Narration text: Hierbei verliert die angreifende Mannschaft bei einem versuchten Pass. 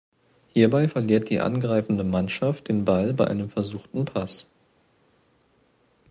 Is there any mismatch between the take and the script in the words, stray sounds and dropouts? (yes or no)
yes